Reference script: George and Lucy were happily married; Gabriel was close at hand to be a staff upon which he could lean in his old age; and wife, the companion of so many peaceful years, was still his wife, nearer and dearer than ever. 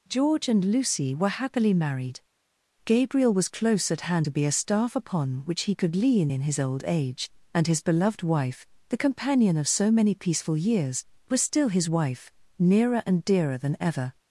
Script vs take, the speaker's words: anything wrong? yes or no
yes